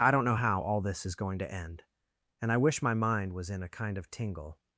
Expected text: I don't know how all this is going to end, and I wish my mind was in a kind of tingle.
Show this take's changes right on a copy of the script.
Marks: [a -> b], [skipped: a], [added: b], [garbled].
I don't know how all this is going to end, and I wish my mind was in a kind of tingle.